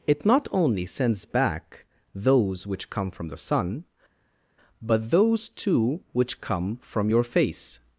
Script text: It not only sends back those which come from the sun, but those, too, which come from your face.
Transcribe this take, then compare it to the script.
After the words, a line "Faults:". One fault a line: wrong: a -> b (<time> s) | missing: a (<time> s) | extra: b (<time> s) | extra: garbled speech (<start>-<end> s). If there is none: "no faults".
It not only sends back those which come from the sun, but those, too, which come from your face.
Faults:
no faults